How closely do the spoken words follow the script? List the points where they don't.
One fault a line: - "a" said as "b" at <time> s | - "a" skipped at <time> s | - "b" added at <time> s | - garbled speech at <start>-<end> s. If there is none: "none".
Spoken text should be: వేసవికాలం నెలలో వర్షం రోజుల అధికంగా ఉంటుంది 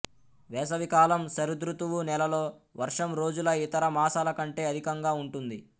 - "శరదృతువు" added at 1.3 s
- "ఇతర మాసాల కంటే" added at 3.6 s